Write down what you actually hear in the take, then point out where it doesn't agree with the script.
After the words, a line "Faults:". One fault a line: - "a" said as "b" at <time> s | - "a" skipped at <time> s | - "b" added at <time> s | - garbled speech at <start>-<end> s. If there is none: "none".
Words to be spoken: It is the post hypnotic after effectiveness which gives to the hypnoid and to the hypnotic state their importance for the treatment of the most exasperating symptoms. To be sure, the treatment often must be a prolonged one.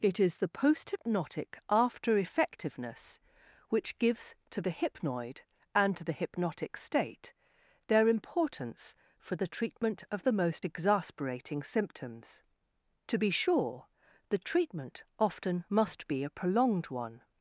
It is the post hypnotic after effectiveness which gives to the hypnoid and to the hypnotic state their importance for the treatment of the most exasperating symptoms. To be sure, the treatment often must be a prolonged one.
Faults:
none